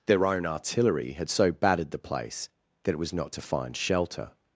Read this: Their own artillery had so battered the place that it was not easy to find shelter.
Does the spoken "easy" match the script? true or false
false